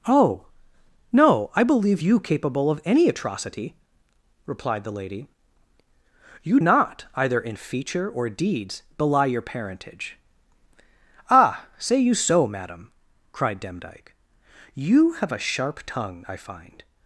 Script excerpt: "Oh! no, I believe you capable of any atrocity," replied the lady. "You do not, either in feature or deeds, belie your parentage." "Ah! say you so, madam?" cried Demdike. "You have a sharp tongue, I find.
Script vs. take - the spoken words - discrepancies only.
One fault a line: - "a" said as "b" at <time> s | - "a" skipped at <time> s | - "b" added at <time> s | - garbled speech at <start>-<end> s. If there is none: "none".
- "do" skipped at 6.6 s